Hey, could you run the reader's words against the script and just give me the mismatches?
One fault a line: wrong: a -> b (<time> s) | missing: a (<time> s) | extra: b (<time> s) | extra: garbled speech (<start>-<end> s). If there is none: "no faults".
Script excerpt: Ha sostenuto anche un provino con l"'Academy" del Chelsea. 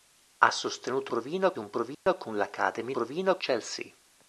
wrong: anche -> provino (1.1 s)
wrong: del -> provino (2.9 s)